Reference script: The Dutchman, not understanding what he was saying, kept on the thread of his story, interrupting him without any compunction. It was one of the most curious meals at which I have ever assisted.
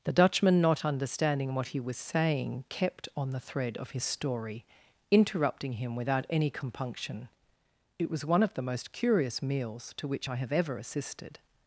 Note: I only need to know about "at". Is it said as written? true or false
false